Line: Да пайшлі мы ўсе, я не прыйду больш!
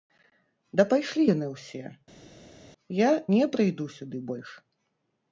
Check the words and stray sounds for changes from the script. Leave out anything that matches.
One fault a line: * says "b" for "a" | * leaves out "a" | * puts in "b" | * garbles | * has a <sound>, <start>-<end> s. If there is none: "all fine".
* says "яны" for "мы"
* puts in "сюды"